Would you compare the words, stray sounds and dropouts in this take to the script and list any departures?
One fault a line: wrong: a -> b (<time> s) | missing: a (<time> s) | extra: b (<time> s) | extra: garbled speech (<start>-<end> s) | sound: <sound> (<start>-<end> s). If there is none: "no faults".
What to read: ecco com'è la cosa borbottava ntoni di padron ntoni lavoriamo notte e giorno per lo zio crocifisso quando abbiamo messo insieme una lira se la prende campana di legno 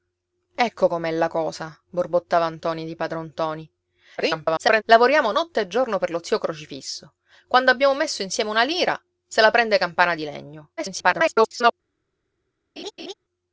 extra: garbled speech (4.2-4.8 s)
extra: garbled speech (10.8-11.7 s)
sound: laugh (12.8-13.1 s)